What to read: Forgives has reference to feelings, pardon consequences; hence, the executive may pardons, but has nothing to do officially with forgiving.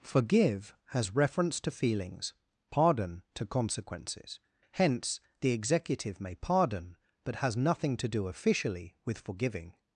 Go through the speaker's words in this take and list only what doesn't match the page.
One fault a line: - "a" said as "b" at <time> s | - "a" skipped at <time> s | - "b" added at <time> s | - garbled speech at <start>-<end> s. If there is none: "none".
- "Forgives" said as "Forgive" at 0.0 s
- "to" added at 3.4 s
- "pardons" said as "pardon" at 6.3 s